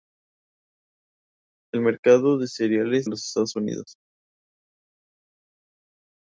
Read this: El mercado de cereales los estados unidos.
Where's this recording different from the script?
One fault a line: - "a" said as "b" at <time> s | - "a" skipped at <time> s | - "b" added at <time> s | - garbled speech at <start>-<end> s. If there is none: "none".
none